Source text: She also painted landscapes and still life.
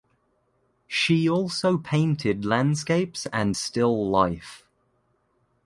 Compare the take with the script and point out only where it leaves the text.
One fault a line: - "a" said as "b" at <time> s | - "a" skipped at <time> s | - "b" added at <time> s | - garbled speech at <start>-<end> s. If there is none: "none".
none